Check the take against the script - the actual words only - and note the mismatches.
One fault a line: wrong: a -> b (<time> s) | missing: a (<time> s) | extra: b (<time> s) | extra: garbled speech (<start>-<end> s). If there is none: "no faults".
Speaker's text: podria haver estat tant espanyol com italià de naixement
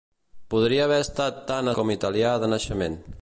missing: espanyol (1.7 s)